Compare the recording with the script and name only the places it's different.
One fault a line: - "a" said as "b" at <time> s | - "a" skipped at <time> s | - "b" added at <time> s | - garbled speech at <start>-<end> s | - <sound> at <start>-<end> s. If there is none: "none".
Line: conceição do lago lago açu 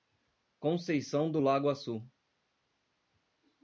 - "lago" skipped at 1.7 s